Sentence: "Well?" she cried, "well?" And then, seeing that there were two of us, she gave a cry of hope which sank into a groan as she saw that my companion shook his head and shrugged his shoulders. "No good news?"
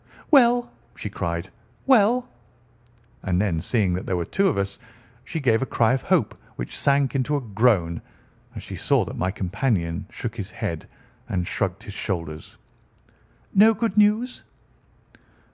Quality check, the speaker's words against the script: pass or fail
pass